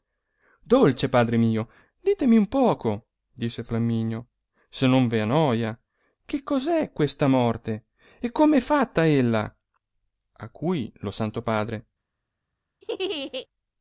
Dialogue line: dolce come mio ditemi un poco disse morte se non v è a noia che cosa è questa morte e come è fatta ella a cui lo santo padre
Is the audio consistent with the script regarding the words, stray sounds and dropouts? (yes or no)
no